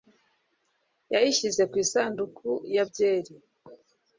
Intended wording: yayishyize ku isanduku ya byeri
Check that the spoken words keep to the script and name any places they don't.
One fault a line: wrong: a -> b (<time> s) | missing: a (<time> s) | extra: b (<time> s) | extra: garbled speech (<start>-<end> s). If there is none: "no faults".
no faults